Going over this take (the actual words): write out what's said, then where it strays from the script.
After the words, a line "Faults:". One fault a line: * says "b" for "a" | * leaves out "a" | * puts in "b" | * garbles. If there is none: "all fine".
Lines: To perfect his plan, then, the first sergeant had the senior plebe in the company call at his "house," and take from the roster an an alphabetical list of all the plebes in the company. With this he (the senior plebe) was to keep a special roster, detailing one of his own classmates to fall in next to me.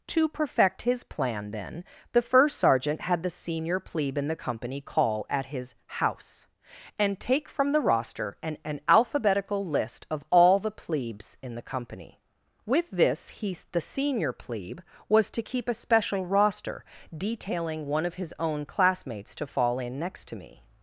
To perfect his plan, then, the first sergeant had the senior plebe in the company call at his "house," and take from the roster an an alphabetical list of all the plebes in the company. With this he (the senior plebe) was to keep a special roster, detailing one of his own classmates to fall in next to me.
Faults:
all fine